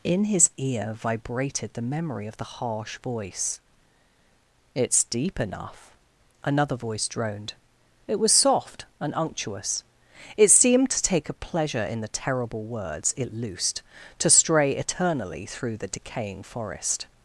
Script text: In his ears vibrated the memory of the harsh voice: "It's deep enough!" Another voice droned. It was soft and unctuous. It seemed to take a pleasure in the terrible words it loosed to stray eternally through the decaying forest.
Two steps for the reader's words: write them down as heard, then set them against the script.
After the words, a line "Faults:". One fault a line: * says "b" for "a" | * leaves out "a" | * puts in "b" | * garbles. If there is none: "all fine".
In his ear vibrated the memory of the harsh voice: "It's deep enough!" Another voice droned. It was soft and unctuous. It seemed to take a pleasure in the terrible words it loosed to stray eternally through the decaying forest.
Faults:
* says "ear" for "ears"